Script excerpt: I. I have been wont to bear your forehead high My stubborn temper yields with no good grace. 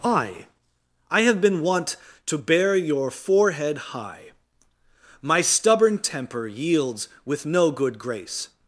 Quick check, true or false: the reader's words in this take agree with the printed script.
true